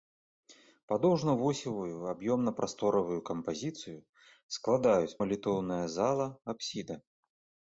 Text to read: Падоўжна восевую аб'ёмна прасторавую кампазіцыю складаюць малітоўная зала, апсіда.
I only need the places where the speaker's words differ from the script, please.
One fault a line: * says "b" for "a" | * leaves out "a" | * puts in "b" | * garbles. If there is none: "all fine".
all fine